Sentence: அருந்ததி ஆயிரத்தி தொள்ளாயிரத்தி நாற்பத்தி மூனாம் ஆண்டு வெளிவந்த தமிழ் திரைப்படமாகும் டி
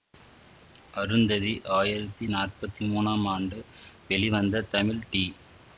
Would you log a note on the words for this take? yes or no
yes